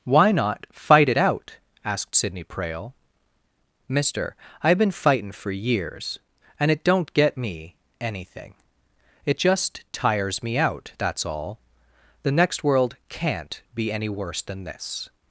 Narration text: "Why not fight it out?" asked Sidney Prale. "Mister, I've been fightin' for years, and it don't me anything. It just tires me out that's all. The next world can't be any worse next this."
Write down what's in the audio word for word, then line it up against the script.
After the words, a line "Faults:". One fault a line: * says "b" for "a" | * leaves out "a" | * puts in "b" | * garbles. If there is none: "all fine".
"Why not fight it out?" asked Sidney Prale. "Mister, I've been fightin' for years, and it don't get me anything. It just tires me out that's all. The next world can't be any worse than this."
Faults:
* puts in "get"
* says "than" for "next"